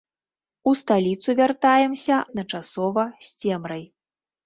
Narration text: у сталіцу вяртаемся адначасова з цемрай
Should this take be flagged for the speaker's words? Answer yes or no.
no